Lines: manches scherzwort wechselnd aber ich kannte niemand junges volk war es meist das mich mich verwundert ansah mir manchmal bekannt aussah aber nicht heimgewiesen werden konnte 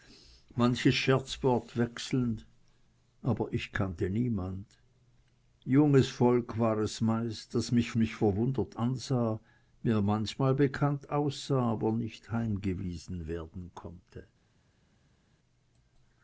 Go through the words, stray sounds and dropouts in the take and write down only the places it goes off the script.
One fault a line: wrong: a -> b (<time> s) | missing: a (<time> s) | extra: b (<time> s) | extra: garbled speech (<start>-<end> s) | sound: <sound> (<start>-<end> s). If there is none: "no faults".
no faults